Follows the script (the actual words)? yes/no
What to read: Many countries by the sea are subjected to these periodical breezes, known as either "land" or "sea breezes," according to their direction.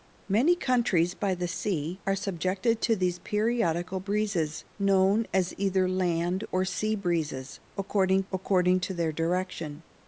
no